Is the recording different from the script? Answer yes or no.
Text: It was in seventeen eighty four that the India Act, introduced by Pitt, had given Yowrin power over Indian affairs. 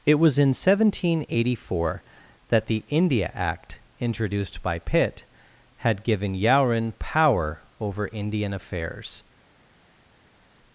no